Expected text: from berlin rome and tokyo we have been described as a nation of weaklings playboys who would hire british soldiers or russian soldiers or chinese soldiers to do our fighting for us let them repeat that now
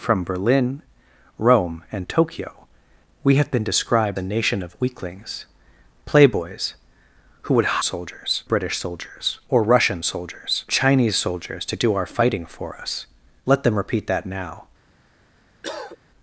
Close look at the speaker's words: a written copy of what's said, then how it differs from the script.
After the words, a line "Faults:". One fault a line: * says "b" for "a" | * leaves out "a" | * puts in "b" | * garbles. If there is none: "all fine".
from berlin rome and tokyo we have been described a nation of weaklings playboys who would soldiers british soldiers or russian soldiers chinese soldiers to do our fighting for us let them repeat that now
Faults:
* leaves out "as"
* says "soldiers" for "hire"
* leaves out "or"